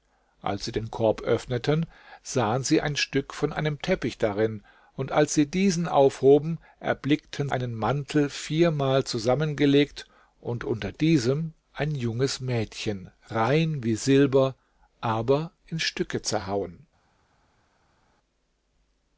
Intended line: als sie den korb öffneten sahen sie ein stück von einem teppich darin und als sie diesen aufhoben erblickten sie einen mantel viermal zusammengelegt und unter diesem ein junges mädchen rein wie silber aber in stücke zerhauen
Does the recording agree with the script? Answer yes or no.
no